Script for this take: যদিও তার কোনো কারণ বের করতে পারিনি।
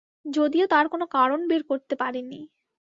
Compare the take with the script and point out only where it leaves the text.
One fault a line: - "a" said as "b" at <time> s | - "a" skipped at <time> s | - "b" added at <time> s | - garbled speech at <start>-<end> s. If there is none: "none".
none